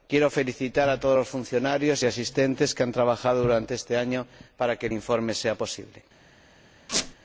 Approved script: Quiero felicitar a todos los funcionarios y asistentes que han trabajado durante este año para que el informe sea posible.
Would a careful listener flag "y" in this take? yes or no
no